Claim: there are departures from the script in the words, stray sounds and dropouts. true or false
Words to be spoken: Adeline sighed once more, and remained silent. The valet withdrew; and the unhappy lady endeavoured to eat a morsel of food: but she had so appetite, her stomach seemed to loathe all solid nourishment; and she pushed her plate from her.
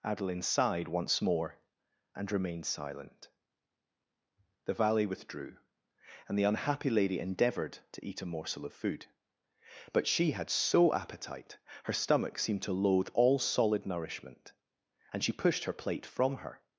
false